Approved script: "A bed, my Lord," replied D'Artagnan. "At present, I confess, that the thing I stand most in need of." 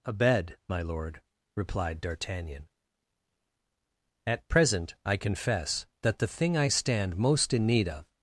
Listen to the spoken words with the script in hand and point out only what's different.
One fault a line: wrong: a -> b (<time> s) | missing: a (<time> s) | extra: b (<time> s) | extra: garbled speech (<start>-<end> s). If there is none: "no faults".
no faults